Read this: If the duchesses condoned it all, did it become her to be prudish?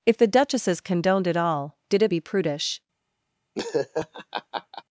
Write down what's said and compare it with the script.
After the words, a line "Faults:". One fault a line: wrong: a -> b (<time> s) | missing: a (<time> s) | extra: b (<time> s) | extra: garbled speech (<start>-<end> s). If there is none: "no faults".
If the duchesses condoned it all, did it be prudish?
Faults:
missing: become her to (2.1 s)